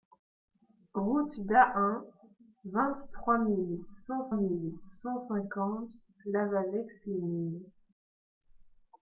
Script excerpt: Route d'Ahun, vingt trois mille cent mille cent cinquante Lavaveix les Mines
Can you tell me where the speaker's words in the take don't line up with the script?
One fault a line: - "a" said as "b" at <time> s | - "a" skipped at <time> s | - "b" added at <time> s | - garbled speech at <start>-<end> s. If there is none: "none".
none